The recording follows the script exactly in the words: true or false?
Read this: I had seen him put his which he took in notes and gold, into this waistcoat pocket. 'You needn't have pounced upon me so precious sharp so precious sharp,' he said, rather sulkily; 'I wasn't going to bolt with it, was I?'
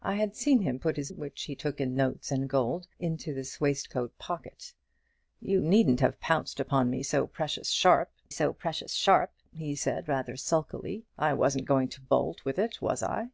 true